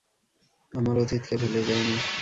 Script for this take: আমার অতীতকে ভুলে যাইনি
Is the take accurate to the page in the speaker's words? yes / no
yes